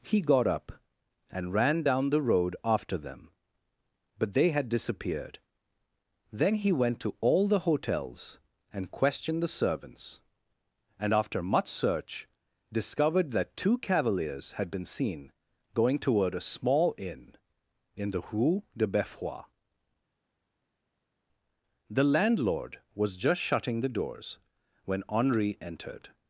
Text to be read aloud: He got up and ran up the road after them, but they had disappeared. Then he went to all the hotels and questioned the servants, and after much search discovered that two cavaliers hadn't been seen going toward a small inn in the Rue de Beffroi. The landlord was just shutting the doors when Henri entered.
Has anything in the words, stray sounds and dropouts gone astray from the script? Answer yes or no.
yes